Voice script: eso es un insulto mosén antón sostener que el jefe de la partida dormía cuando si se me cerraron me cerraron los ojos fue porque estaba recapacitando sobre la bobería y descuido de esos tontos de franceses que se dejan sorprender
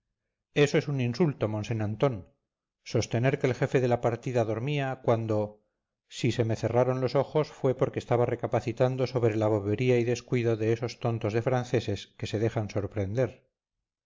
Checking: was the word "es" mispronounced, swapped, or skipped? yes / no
no